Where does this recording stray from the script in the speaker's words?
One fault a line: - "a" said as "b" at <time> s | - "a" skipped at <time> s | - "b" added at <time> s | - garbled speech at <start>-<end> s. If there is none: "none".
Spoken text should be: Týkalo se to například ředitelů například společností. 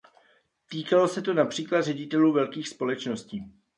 - "například" said as "velkých" at 2.3 s